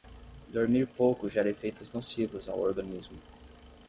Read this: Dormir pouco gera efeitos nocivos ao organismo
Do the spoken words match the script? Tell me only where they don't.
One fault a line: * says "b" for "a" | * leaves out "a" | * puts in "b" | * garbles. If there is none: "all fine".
all fine